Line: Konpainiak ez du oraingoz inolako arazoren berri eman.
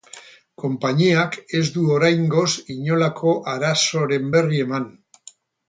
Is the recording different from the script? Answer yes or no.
no